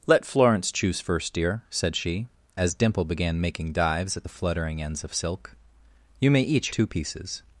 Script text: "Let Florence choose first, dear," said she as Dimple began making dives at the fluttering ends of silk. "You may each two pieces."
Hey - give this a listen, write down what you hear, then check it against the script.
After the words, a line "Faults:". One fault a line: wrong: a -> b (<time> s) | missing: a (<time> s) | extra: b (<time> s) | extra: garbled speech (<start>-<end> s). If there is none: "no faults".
"Let Florence choose first, dear," said she as Dimple began making dives at the fluttering ends of silk. "You may each two pieces."
Faults:
no faults